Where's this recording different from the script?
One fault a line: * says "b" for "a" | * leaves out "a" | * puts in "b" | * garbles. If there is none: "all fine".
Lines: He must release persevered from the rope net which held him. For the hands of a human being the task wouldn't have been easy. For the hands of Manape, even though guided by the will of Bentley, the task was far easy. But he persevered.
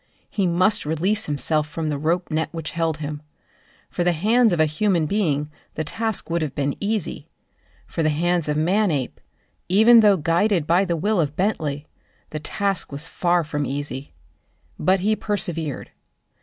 * says "himself" for "persevered"
* says "would" for "wouldn't"
* puts in "from"